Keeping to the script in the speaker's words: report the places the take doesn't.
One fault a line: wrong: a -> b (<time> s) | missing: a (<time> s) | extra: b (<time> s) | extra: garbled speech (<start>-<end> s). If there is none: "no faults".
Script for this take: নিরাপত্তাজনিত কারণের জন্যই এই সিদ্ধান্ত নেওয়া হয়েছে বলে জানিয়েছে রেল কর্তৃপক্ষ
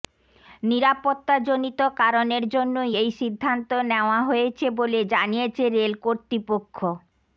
no faults